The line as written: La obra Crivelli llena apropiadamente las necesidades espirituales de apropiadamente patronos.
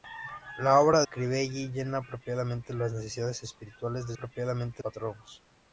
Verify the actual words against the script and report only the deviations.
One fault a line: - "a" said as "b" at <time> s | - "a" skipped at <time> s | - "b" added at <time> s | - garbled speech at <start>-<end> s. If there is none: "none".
none